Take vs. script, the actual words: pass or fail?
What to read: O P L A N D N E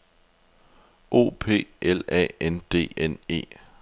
pass